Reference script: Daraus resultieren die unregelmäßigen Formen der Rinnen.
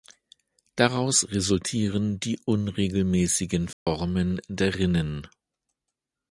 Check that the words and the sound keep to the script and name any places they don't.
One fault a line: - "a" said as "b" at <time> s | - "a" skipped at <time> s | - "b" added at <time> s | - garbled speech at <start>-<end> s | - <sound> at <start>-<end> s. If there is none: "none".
- dropout at 3.7-3.9 s